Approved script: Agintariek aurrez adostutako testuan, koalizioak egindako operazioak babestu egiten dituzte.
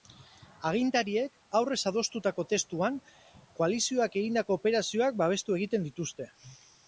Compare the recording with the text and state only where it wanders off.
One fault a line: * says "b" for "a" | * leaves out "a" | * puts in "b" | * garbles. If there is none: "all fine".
all fine